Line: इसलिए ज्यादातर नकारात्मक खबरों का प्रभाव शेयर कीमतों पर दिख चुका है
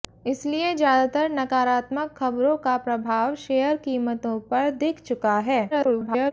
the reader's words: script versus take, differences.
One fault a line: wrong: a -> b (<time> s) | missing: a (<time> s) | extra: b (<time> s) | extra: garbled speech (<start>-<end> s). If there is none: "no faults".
extra: garbled speech (5.7-6.3 s)